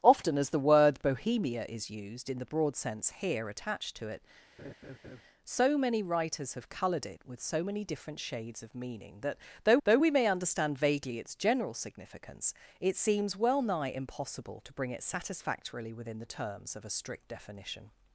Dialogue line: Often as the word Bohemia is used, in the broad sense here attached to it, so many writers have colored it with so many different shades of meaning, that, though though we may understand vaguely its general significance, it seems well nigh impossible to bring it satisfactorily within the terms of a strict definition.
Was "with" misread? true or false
false